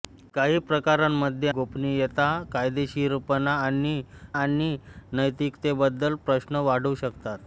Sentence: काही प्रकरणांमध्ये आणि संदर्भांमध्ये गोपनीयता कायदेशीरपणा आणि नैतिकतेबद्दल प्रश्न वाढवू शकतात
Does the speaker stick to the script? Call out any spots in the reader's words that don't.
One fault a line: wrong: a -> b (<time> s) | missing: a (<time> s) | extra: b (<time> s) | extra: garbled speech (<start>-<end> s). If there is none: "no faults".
missing: आणि संदर्भांमध्ये (1.5 s)
extra: आणि (4.3 s)